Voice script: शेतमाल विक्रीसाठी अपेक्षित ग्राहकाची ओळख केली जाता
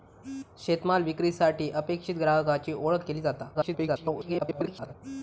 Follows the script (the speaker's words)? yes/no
no